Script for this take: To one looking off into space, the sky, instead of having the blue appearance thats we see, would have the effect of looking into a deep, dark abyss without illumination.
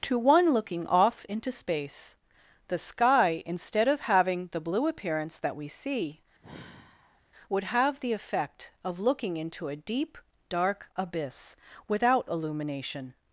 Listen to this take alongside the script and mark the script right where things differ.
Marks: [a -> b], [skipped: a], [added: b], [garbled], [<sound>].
To one looking off into space, the sky, instead of having the blue appearance [thats -> that] we see, [sigh] would have the effect of looking into a deep, dark abyss without illumination.